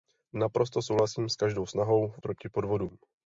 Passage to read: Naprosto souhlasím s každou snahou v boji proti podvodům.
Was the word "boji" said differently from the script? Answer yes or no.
yes